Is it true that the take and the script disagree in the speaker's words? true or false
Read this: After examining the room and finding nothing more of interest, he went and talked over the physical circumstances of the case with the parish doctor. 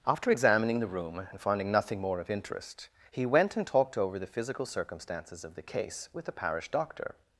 false